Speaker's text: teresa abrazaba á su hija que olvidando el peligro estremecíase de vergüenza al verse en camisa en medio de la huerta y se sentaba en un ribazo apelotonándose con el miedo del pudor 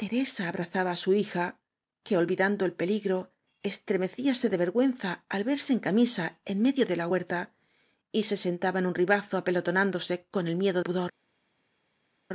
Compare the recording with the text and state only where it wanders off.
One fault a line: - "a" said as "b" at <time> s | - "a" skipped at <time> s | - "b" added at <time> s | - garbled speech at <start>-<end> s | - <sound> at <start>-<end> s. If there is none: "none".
- "del" skipped at 10.8 s